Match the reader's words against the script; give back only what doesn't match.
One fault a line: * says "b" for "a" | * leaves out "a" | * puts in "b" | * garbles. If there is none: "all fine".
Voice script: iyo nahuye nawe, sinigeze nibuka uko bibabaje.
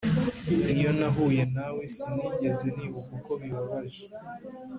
all fine